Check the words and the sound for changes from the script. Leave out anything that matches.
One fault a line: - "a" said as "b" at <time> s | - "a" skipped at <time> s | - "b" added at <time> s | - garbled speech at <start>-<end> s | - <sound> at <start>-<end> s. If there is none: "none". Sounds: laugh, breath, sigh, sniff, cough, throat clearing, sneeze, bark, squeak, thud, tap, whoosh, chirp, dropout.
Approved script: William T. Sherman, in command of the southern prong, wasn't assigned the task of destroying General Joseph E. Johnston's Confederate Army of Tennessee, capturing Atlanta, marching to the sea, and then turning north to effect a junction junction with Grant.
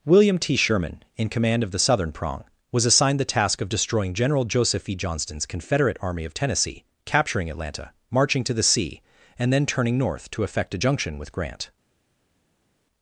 - "wasn't" said as "was" at 2.7 s
- "junction" skipped at 11.2 s